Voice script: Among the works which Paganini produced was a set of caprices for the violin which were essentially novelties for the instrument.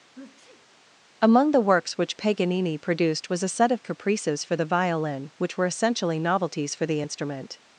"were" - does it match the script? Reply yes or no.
yes